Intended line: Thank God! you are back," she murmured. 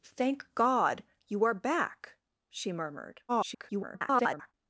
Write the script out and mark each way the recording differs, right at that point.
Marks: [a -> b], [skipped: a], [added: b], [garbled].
Thank God! you are back," she murmured. [garbled]